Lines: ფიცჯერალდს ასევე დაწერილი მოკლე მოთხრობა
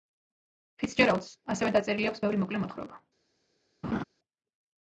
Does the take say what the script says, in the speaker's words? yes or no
no